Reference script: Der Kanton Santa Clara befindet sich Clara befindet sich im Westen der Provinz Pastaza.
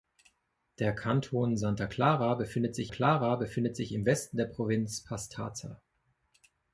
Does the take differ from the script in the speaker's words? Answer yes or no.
no